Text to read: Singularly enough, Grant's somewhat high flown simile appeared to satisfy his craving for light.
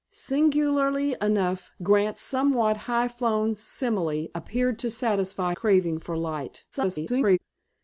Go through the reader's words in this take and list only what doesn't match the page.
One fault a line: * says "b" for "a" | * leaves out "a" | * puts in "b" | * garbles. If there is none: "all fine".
* leaves out "his"
* garbles